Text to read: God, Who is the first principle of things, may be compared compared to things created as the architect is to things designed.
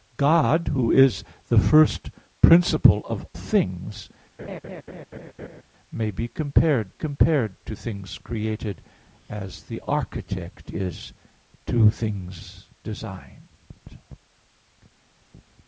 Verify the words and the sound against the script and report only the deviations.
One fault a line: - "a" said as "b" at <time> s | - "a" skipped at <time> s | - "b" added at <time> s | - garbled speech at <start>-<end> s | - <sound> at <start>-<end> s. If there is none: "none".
- laugh at 4.4-5.6 s